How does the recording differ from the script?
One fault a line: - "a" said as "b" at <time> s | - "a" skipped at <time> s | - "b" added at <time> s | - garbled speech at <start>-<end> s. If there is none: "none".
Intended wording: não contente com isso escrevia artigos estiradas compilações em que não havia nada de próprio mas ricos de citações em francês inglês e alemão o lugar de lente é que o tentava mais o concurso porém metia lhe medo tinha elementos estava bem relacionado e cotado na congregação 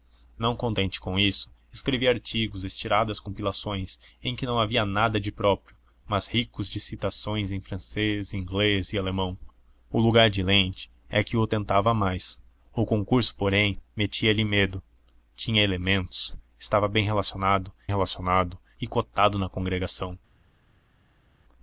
- "relacionado" added at 17.9 s